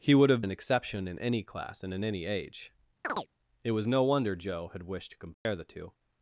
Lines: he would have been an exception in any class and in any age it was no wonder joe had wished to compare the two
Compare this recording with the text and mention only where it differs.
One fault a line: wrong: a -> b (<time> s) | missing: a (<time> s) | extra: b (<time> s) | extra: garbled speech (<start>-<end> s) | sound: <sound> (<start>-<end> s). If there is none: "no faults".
missing: been (0.4 s)
sound: chirp (3.0-3.3 s)
sound: dropout (5.3-5.5 s)